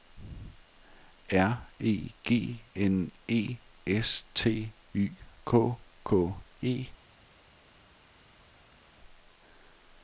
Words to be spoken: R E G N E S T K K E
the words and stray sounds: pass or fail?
fail